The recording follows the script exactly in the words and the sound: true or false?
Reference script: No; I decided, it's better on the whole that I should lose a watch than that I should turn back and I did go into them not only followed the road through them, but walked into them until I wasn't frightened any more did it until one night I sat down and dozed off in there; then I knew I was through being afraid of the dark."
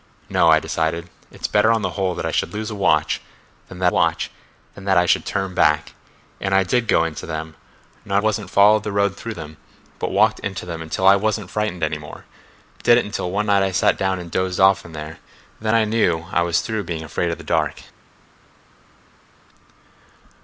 false